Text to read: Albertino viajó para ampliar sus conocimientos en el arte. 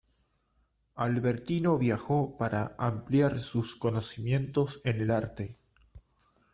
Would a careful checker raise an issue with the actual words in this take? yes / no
no